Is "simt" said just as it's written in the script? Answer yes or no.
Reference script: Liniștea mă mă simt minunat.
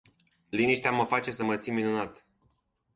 yes